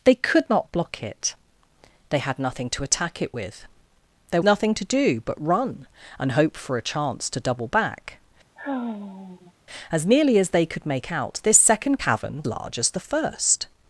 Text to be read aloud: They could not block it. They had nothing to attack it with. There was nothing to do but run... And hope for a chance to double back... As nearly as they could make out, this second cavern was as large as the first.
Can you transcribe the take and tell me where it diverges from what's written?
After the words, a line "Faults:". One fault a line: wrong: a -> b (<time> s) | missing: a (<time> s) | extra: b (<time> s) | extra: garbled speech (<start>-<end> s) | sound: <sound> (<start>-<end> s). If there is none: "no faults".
They could not block it. They had nothing to attack it with. There nothing to do but run... And hope for a chance to double back... As nearly as they could make out, this second cavern large as the first.
Faults:
missing: was (4.4 s)
sound: sigh (8.6-9.5 s)
missing: was as (12.4 s)